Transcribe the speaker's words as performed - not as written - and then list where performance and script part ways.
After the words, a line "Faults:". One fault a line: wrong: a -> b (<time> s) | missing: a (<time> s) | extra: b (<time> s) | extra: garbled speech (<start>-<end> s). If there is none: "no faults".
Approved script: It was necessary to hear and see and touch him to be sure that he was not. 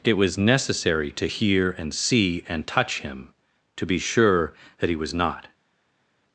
It was necessary to hear and see and touch him to be sure that he was not.
Faults:
no faults